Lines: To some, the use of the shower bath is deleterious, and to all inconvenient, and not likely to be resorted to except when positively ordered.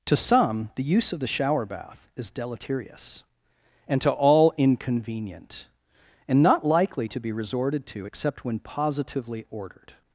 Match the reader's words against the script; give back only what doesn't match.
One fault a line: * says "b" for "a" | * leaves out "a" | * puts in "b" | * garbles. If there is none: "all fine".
all fine